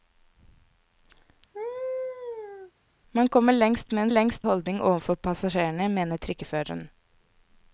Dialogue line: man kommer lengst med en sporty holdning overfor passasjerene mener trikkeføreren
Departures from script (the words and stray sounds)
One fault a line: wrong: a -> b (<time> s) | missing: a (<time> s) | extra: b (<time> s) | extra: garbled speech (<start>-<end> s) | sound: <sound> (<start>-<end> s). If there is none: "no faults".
sound: laugh (1.5-2.7 s)
wrong: sporty -> lengst (4.1 s)